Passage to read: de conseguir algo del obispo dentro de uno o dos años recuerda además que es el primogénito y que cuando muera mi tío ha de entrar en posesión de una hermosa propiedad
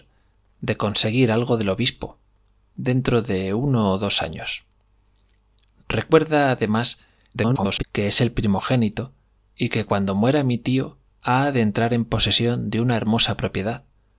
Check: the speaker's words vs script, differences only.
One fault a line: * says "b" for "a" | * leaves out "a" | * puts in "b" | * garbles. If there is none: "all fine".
* garbles